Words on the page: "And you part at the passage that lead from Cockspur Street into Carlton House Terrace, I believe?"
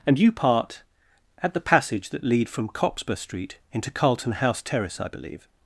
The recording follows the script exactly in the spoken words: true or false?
true